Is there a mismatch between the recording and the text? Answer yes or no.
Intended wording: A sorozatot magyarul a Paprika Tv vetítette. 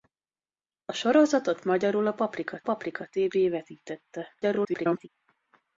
yes